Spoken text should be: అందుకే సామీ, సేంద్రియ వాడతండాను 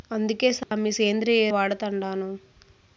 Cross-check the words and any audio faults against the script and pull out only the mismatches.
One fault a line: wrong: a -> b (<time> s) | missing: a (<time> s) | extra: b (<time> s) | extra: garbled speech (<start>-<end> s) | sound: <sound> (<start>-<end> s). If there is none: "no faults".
sound: dropout (0.6-0.7 s)